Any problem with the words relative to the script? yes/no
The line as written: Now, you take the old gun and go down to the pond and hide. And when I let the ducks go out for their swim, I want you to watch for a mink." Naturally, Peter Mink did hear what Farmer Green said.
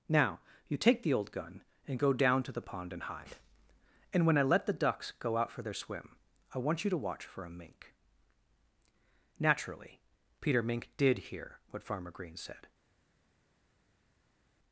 no